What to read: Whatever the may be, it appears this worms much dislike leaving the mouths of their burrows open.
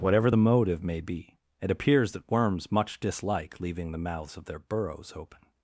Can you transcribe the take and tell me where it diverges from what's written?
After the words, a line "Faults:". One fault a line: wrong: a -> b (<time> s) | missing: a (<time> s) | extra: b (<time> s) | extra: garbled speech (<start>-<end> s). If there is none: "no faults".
Whatever the motive may be, it appears that worms much dislike leaving the mouths of their burrows open.
Faults:
extra: motive (0.4 s)
wrong: this -> that (2.1 s)